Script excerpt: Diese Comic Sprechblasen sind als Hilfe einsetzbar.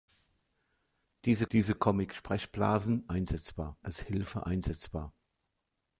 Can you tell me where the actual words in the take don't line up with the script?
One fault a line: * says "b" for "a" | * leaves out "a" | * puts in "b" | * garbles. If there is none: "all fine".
* puts in "diese"
* says "einsetzbar" for "sind"